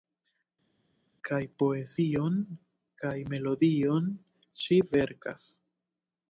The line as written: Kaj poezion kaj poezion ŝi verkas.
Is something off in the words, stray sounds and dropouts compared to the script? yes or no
yes